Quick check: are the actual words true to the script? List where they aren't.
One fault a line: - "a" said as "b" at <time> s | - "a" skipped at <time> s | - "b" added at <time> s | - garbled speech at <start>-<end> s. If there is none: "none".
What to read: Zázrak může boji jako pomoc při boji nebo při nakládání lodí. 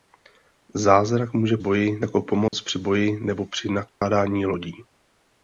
none